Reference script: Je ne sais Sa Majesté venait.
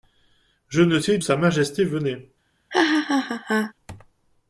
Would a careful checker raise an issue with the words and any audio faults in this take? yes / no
yes